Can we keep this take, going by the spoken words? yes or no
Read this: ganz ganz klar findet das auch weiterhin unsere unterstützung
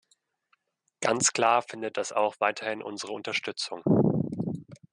no